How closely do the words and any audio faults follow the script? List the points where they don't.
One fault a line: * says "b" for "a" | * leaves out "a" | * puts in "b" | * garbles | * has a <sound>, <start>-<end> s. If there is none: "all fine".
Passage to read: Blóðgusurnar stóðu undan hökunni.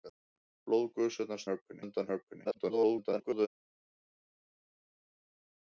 * says "hökunni" for "stóðu"
* garbles